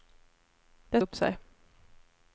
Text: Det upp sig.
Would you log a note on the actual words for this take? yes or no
no